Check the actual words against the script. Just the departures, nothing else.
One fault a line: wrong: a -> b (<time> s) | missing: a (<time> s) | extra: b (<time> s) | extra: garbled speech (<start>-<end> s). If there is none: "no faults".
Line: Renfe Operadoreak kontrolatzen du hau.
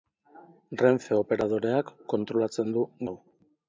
no faults